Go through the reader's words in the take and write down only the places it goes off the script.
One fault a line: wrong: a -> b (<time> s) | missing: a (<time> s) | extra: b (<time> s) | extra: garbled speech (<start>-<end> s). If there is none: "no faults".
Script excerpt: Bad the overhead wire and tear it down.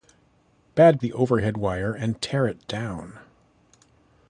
no faults